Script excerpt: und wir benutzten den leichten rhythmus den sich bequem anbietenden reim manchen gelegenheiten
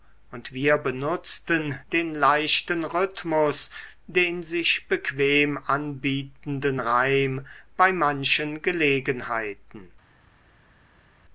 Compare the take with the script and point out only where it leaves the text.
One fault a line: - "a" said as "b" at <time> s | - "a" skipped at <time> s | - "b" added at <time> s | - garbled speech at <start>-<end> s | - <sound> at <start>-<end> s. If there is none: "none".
- "bei" added at 7.8 s